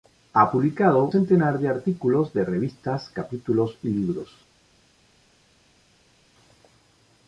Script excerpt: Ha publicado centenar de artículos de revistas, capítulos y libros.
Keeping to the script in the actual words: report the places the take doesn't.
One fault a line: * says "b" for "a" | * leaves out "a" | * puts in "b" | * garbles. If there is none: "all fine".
all fine